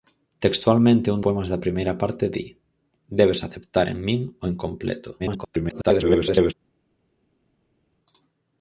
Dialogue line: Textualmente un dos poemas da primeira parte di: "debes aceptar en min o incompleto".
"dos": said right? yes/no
no